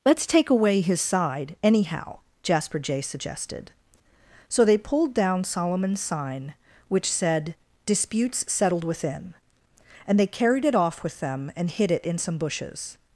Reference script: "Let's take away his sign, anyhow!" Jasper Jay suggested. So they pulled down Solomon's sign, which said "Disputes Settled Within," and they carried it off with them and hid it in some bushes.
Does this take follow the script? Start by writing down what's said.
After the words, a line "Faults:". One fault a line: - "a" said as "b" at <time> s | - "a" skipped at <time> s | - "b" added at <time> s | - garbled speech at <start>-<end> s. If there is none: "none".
"Let's take away his side, anyhow!" Jasper Jay suggested. So they pulled down Solomon's sign, which said "Disputes Settled Within," and they carried it off with them and hid it in some bushes.
Faults:
- "sign" said as "side" at 1.0 s